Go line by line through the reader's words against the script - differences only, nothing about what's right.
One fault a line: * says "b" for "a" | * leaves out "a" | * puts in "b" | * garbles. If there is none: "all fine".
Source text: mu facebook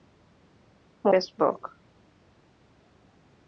all fine